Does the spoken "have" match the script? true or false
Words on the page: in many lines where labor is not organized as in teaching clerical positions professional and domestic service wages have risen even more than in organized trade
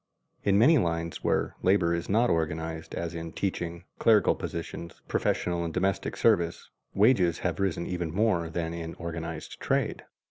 true